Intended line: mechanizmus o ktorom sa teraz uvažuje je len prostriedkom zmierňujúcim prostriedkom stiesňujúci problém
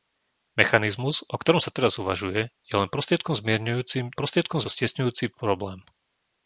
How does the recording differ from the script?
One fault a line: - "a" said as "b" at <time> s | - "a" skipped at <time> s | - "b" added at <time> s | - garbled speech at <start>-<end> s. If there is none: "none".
none